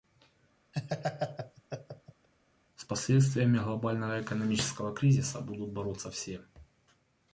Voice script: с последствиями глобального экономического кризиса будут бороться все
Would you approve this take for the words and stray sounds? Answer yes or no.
no